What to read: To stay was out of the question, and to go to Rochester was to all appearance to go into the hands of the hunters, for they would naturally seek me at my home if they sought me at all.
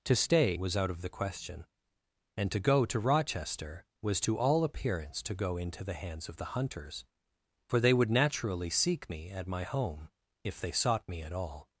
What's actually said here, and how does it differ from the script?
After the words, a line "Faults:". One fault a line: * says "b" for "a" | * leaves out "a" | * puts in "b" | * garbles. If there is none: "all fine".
To stay was out of the question, and to go to Rochester was to all appearance to go into the hands of the hunters, for they would naturally seek me at my home if they sought me at all.
Faults:
all fine